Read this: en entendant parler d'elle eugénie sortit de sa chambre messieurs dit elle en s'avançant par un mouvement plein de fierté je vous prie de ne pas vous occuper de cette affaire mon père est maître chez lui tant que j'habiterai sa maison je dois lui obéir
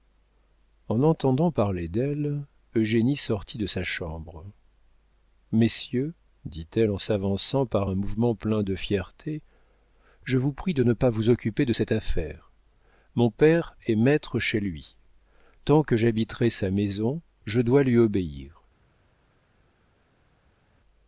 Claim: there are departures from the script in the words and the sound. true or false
false